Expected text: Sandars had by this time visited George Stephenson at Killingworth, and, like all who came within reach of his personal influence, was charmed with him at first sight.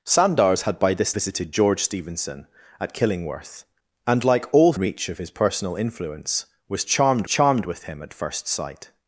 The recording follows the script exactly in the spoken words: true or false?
false